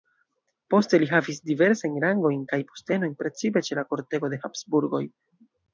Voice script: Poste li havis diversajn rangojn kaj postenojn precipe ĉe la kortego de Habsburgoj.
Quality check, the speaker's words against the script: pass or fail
pass